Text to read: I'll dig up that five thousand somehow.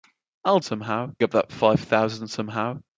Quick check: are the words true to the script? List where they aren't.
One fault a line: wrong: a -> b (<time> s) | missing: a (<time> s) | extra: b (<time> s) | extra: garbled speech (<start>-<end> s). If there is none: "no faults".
wrong: dig -> somehow (0.6 s)